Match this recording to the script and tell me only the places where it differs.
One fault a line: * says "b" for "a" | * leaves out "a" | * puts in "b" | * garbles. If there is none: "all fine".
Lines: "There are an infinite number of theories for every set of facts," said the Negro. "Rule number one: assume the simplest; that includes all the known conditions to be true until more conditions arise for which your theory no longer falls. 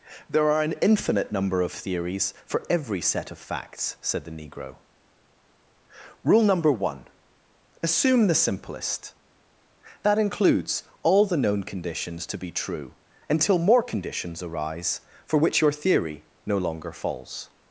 all fine